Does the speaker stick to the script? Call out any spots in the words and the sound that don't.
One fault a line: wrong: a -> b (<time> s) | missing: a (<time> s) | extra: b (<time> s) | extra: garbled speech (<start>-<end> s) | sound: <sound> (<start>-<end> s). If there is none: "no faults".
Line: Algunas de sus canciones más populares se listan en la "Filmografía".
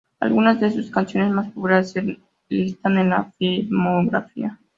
no faults